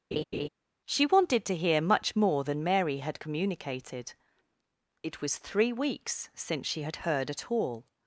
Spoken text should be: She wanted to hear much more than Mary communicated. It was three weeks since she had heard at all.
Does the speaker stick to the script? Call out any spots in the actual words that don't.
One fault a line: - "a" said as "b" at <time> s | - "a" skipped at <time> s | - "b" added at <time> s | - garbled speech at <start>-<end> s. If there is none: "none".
- "had" added at 3.0 s